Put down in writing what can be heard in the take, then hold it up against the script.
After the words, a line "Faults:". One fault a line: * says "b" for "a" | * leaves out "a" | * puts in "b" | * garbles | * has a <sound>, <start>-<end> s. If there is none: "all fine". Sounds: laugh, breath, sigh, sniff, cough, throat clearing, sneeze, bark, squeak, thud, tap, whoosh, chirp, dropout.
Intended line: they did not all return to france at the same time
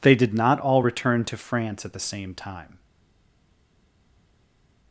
they did not all return to france at the same time
Faults:
all fine